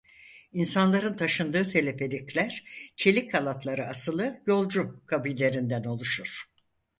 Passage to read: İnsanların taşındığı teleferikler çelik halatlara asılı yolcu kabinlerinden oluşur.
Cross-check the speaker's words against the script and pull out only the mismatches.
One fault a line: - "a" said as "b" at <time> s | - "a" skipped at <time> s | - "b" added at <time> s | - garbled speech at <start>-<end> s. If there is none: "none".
none